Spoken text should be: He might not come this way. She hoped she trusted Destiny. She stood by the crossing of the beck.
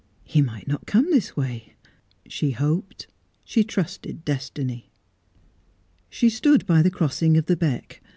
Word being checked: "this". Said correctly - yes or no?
yes